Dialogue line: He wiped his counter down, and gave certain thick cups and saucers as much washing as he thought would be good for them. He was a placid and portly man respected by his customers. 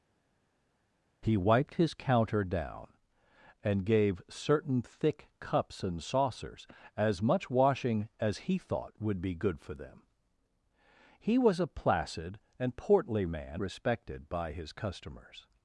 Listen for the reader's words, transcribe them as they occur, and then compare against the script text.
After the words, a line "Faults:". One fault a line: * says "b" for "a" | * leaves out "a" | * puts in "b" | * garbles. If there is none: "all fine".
He wiped his counter down, and gave certain thick cups and saucers as much washing as he thought would be good for them. He was a placid and portly man respected by his customers.
Faults:
all fine